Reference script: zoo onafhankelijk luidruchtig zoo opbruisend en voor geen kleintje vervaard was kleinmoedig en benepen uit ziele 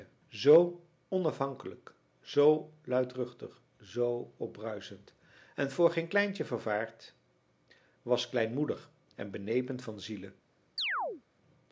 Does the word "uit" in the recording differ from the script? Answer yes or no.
yes